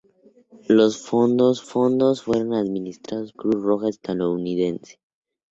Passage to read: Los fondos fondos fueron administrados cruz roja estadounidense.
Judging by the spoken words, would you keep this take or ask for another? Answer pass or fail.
pass